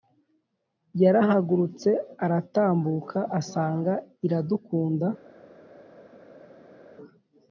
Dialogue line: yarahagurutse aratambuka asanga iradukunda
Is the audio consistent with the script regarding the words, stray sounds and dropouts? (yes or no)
yes